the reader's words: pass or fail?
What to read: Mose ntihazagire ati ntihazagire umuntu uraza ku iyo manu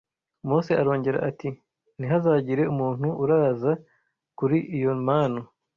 fail